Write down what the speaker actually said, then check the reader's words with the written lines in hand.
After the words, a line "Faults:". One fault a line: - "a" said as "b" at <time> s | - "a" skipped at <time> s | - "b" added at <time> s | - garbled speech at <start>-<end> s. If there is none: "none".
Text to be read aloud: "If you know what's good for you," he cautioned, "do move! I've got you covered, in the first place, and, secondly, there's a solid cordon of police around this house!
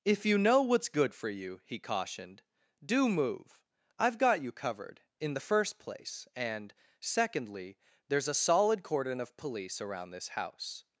"If you know what's good for you," he cautioned, "do move! I've got you covered, in the first place, and, secondly, there's a solid cordon of police around this house!
Faults:
none